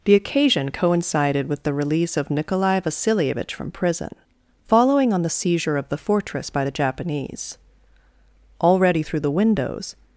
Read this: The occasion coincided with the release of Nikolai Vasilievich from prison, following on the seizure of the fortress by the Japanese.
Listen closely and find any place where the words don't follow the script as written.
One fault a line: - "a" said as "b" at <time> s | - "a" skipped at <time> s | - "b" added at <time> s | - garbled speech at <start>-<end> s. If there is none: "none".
- "Already through the windows" added at 8.6 s